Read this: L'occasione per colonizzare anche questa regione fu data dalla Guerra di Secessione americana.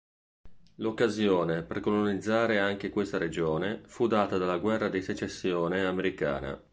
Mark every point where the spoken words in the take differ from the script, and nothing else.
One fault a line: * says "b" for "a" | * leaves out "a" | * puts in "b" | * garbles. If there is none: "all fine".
all fine